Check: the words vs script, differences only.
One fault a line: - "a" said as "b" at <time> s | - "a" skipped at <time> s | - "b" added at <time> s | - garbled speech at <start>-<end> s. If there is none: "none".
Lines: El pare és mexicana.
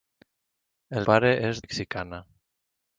none